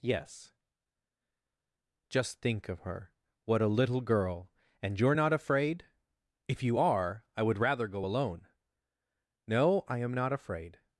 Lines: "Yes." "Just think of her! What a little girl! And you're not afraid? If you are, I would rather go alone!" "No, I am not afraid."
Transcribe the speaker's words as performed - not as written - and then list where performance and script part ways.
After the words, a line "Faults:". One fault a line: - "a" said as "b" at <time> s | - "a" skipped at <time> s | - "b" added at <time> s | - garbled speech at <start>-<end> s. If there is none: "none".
"Yes." "Just think of her! What a little girl! And you're not afraid? If you are, I would rather go alone!" "No, I am not afraid."
Faults:
none